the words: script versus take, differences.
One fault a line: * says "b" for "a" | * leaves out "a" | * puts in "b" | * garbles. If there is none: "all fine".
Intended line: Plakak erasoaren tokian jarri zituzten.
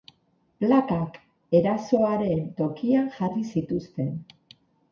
all fine